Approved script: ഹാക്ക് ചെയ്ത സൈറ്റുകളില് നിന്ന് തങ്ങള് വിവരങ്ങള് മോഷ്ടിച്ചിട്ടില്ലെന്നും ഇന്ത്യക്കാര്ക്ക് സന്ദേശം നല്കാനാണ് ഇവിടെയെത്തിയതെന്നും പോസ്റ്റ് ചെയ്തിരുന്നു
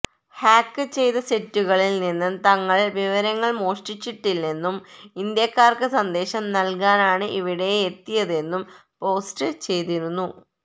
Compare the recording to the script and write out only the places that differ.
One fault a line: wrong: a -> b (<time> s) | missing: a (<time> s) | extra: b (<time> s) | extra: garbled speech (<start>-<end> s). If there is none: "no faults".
no faults